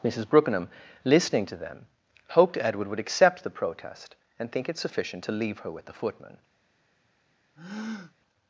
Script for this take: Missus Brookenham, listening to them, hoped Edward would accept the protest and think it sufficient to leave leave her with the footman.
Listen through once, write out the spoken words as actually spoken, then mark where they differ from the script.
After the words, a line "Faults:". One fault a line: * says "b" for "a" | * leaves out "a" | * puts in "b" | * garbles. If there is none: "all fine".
Missus Brookenham, listening to them, hoped Edward would accept the protest and think it sufficient to leave her with the footman.
Faults:
* leaves out "leave"